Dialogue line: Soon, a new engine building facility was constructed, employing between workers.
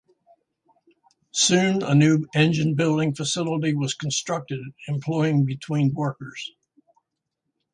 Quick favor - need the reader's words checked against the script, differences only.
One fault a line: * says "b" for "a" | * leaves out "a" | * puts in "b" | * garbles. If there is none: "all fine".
all fine